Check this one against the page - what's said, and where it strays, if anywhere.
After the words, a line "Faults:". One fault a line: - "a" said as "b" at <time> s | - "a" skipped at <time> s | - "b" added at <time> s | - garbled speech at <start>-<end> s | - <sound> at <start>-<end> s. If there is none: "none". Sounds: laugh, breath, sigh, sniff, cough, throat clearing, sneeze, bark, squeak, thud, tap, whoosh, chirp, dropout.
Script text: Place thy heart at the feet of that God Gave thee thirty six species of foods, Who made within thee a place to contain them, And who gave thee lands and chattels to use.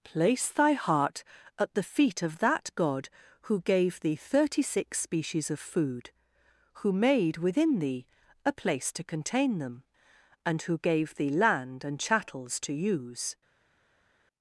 Place thy heart at the feet of that God Who gave thee thirty six species of food, Who made within thee a place to contain them, And who gave thee land and chattels to use.
Faults:
- "Who" added at 3.4 s
- "foods" said as "food" at 5.6 s
- "lands" said as "land" at 11.3 s